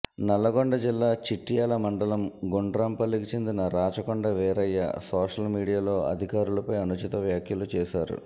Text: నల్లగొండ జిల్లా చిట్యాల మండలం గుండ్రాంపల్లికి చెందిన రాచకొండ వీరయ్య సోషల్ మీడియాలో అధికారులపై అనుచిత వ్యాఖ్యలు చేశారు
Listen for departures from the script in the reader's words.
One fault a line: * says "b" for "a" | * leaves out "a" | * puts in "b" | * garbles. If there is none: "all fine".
all fine